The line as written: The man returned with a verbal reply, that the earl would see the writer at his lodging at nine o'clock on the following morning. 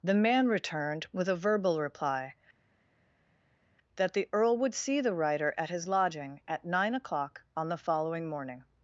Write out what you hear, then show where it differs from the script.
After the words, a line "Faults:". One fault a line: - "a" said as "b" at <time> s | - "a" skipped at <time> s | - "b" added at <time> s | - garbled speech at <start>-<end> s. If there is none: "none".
The man returned with a verbal reply, that the earl would see the writer at his lodging at nine o'clock on the following morning.
Faults:
none